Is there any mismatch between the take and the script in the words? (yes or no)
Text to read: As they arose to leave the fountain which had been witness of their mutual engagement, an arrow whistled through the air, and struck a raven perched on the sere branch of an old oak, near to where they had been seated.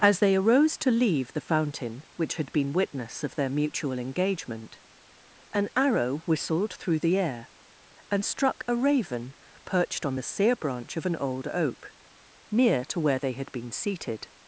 no